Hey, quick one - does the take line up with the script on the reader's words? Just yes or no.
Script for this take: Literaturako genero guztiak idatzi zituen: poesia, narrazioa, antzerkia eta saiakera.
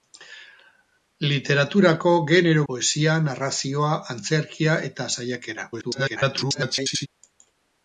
no